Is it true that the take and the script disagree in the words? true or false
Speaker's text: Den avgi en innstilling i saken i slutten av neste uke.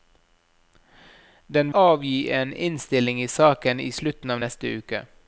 false